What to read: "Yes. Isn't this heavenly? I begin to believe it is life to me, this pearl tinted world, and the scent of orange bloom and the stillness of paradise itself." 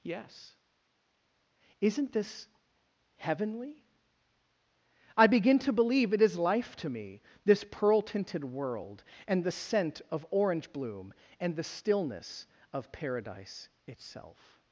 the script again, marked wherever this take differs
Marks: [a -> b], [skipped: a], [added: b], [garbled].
"Yes. Isn't this heavenly? I begin to believe it is life to me, this pearl tinted world, and the scent of orange bloom and the stillness of paradise itself."